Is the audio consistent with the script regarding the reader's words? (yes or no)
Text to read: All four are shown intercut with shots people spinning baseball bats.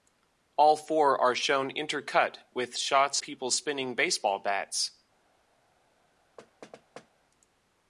yes